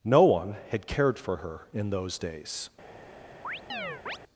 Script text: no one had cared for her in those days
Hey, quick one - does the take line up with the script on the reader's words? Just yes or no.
yes